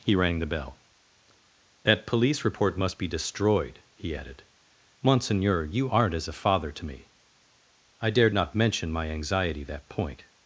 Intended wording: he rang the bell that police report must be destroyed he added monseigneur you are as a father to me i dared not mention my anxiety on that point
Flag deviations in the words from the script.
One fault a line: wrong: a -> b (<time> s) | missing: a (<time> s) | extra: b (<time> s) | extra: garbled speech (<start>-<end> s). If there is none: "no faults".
wrong: are -> aren't (5.9 s)
missing: on (9.6 s)